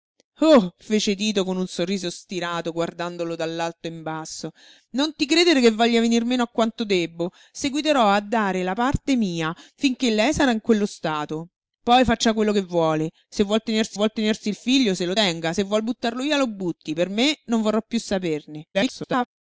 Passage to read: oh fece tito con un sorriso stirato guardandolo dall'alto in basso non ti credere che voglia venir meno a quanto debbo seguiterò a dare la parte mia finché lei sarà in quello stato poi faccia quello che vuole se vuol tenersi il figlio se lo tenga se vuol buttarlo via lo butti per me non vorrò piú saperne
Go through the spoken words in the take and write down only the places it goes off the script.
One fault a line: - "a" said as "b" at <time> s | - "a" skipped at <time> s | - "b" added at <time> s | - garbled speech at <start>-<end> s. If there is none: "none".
- "vuol tenersi" added at 13.9 s
- garbled speech at 18.7-19.3 s